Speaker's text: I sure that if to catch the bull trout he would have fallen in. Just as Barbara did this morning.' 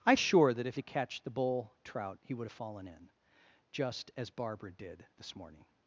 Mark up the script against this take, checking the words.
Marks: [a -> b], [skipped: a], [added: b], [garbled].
I sure that if to catch the bull trout he would have fallen in. Just as Barbara did this morning.'